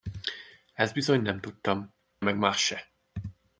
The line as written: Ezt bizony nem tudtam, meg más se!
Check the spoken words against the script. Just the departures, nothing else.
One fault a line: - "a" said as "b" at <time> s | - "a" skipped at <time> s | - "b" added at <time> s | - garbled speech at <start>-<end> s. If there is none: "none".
none